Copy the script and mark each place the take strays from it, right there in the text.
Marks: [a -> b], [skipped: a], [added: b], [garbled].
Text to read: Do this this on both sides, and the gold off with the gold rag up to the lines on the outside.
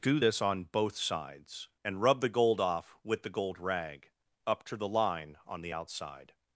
Do this [skipped: this] on both sides, and [added: rub] the gold off with the gold rag up to the [lines -> line] on the outside.